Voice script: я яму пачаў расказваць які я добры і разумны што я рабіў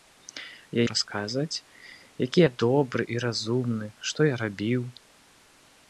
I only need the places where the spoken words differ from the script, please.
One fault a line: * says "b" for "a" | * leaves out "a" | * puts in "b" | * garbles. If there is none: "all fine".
* leaves out "яму пачаў"